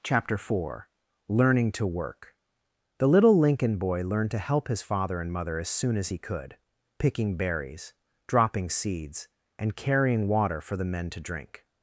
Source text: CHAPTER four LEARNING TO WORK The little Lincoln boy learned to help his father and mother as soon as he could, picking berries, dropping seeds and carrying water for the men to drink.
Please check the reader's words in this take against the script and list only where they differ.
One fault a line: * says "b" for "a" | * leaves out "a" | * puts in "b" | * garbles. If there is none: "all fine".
all fine